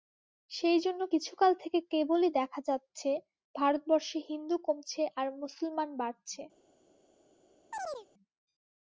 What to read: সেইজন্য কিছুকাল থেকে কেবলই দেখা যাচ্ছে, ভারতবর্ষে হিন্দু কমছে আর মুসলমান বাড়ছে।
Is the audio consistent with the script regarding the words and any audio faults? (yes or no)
no